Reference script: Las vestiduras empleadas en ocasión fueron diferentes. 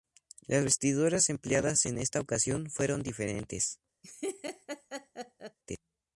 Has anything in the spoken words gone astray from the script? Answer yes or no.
yes